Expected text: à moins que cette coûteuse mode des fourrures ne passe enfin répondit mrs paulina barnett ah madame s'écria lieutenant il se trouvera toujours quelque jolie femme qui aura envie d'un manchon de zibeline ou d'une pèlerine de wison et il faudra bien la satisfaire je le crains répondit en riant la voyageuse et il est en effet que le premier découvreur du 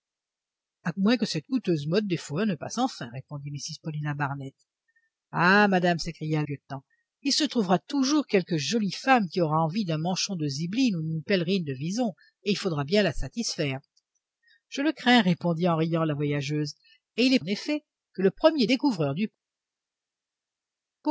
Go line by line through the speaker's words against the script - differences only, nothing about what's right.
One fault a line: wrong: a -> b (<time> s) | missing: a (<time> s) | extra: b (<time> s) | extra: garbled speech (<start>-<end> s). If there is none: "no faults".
no faults